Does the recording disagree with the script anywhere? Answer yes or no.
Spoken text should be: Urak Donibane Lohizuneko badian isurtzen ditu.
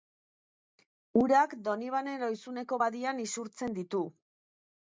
no